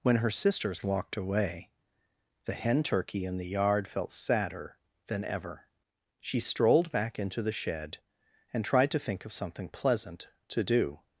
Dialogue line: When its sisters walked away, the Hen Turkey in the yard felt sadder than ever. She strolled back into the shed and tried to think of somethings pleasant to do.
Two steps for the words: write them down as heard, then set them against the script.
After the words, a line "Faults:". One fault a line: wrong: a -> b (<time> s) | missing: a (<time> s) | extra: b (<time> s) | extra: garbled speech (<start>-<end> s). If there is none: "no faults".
When her sisters walked away, the Hen Turkey in the yard felt sadder than ever. She strolled back into the shed and tried to think of something pleasant to do.
Faults:
wrong: its -> her (0.2 s)
wrong: somethings -> something (9.3 s)